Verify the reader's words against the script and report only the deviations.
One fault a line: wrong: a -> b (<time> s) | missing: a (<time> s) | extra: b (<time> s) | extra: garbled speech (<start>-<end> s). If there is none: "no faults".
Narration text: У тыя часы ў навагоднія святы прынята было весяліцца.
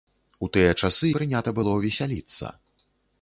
missing: ў навагоднія святы (1.1 s)